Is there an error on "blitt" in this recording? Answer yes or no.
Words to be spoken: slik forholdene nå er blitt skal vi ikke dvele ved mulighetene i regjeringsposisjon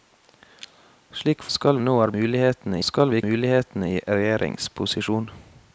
yes